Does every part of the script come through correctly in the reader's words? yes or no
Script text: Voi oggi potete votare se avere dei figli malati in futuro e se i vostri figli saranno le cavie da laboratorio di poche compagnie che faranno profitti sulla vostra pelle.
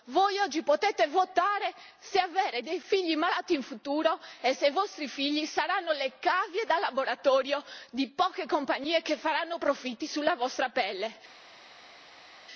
yes